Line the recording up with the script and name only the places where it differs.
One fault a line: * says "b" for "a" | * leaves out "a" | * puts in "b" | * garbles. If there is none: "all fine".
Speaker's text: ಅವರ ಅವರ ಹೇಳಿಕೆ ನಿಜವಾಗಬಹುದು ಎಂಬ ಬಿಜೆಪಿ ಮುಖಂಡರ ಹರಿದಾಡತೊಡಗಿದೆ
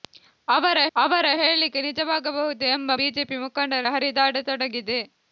all fine